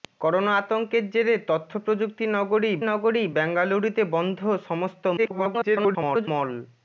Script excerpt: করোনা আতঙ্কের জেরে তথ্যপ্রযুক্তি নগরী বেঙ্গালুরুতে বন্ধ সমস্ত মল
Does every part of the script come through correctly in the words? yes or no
no